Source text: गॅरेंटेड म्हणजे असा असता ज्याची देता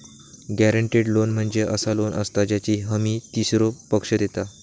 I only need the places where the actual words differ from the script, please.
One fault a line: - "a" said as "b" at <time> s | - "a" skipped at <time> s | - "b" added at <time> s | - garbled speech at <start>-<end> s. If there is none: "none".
- "लोन" added at 1.1 s
- "लोन" added at 1.9 s
- "हमी तीसरो पक्ष" added at 2.8 s